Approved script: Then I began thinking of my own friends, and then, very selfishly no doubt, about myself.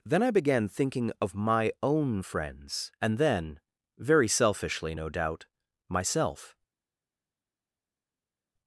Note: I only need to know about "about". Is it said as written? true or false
false